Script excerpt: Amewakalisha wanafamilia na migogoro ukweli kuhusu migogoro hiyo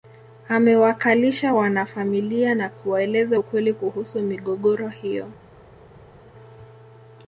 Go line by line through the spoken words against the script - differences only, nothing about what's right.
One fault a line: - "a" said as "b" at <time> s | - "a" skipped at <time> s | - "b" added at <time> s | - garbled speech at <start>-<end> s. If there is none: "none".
- "migogoro" said as "kuwaeleza" at 2.7 s